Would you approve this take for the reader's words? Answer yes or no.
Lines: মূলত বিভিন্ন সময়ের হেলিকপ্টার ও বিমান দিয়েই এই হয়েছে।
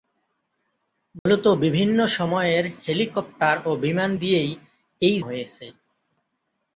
yes